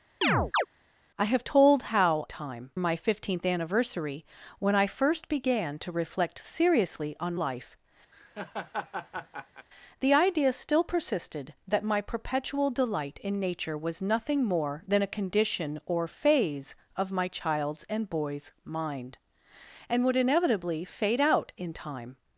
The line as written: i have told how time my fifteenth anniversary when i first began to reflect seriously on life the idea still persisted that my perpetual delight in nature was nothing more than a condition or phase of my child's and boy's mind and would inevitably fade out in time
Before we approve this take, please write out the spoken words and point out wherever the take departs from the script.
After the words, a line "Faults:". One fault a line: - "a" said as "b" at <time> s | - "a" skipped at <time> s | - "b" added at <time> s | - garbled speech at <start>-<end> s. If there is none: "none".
i have told how time my fifteenth anniversary when i first began to reflect seriously on life the idea still persisted that my perpetual delight in nature was nothing more than a condition or phase of my child's and boy's mind and would inevitably fade out in time
Faults:
none